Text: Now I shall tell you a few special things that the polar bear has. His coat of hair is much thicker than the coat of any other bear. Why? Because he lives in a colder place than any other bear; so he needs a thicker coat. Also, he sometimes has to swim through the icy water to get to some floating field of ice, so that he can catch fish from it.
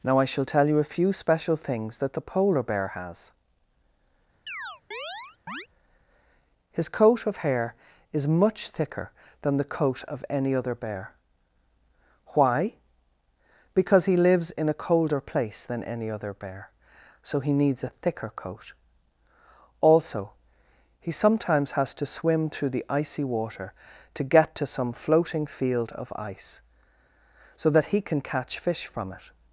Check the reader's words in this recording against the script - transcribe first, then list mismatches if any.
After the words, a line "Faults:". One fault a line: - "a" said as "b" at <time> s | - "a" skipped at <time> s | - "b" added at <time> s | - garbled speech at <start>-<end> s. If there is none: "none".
Now I shall tell you a few special things that the polar bear has. His coat of hair is much thicker than the coat of any other bear. Why? Because he lives in a colder place than any other bear; so he needs a thicker coat. Also, he sometimes has to swim through the icy water to get to some floating field of ice, so that he can catch fish from it.
Faults:
none